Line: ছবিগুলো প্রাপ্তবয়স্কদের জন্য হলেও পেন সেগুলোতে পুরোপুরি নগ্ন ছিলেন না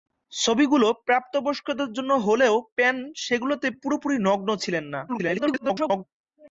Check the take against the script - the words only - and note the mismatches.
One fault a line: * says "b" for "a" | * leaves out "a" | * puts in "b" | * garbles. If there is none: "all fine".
* garbles